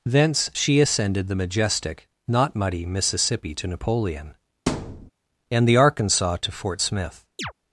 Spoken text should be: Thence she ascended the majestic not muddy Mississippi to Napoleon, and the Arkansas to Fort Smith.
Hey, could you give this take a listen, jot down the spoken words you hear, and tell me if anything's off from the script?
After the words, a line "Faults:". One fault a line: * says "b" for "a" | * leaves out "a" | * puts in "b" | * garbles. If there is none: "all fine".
Thence she ascended the majestic not muddy Mississippi to Napoleon, and the Arkansas to Fort Smith.
Faults:
all fine